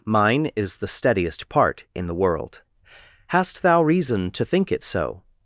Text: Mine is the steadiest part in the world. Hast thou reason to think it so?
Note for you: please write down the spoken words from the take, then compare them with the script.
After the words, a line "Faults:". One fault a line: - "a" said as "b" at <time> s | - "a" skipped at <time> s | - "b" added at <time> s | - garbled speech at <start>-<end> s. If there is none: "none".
Mine is the steadiest part in the world. Hast thou reason to think it so?
Faults:
none